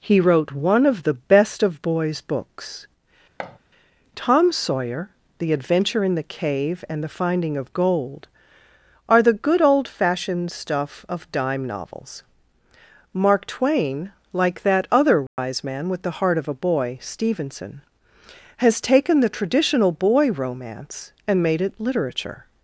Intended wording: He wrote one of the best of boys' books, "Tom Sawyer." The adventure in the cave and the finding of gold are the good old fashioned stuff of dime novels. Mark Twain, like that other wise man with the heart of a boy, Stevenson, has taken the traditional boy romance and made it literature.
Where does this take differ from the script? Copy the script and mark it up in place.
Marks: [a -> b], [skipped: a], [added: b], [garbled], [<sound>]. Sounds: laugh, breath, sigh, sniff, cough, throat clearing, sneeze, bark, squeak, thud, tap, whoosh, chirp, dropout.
He wrote one of the best of boys' books, [thud] "Tom Sawyer." The adventure in the cave and the finding of gold are the good old fashioned stuff of dime novels. Mark Twain, like that other wise [dropout] man with the heart of a boy, Stevenson, has taken the traditional boy romance and made it literature.